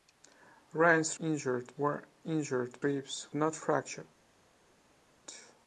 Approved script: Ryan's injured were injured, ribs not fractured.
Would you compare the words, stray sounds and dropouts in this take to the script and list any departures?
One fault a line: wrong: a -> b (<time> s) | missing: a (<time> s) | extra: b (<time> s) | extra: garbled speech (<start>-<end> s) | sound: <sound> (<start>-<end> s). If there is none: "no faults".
no faults